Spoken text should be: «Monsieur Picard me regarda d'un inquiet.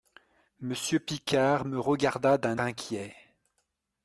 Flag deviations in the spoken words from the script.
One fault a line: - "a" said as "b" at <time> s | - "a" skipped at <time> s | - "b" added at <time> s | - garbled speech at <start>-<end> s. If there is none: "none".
none